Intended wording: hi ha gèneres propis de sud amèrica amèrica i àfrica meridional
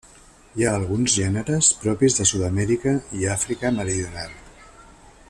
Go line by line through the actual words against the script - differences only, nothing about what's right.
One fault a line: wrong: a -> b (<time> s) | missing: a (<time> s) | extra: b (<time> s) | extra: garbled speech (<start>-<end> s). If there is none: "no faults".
extra: alguns (0.7 s)
missing: amèrica (2.9 s)